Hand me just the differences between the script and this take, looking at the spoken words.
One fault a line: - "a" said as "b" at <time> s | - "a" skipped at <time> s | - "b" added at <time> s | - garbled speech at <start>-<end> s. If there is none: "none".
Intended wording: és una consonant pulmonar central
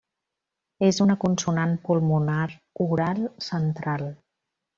- "oral" added at 2.9 s